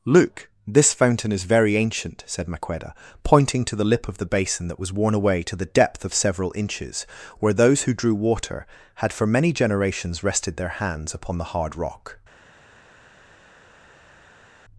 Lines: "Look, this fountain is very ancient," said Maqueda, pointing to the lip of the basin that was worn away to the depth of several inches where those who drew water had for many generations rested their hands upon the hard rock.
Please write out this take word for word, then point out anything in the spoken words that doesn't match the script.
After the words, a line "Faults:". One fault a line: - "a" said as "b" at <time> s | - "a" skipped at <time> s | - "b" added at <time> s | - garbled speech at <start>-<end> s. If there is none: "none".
"Look, this fountain is very ancient," said Maqueda, pointing to the lip of the basin that was worn away to the depth of several inches where those who drew water had for many generations rested their hands upon the hard rock.
Faults:
none